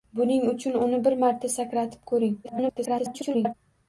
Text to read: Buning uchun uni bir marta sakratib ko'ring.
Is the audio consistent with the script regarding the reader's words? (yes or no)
no